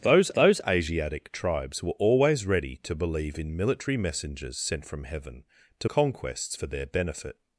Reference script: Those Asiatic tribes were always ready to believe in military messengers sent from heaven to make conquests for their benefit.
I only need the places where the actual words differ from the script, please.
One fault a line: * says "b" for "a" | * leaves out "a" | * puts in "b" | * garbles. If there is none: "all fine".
* puts in "those"
* leaves out "make"